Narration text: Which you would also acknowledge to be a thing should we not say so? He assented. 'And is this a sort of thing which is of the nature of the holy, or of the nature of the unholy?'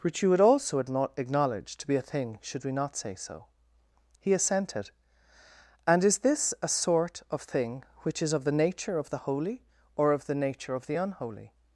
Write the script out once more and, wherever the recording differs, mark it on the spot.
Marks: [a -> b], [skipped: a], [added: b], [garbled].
Which you would also acknowledge to be a thing should we not say so? He assented. 'And is this a sort of thing which is of the nature of the holy, or of the nature of the unholy?'